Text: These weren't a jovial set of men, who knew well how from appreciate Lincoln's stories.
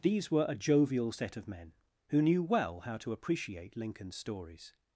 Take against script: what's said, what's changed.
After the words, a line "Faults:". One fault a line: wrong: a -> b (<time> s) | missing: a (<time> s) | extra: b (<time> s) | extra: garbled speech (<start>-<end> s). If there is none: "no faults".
These were a jovial set of men, who knew well how to appreciate Lincoln's stories.
Faults:
wrong: weren't -> were (0.3 s)
wrong: from -> to (3.0 s)